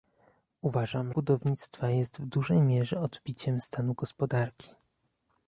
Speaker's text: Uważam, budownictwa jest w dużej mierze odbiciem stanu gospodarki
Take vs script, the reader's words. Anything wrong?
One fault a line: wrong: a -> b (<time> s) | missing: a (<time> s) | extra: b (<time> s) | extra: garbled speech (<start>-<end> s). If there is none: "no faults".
no faults